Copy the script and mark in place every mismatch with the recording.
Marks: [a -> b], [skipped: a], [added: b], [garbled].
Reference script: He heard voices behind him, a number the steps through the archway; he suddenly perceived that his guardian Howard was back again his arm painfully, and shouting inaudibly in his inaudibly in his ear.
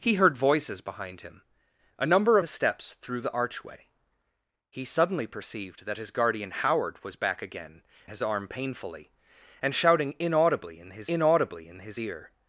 He heard voices behind him, a number the steps through the archway; he suddenly perceived that his guardian Howard was back again his arm painfully, and shouting inaudibly in his inaudibly in his ear.